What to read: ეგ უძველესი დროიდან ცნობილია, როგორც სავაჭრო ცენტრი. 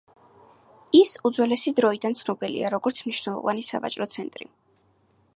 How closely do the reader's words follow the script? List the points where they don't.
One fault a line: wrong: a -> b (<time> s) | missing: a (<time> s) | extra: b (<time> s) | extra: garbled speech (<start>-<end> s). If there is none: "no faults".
wrong: ეგ -> ის (1.0 s)
extra: მნიშვნელოვანი (3.1 s)